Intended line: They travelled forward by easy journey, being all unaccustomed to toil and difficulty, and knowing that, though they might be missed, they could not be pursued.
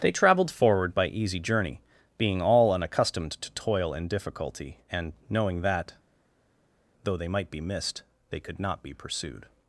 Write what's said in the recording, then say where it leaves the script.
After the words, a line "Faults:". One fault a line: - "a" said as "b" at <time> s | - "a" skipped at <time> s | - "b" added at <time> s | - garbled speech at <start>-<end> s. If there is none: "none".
They travelled forward by easy journey, being all unaccustomed to toil and difficulty, and knowing that, though they might be missed, they could not be pursued.
Faults:
none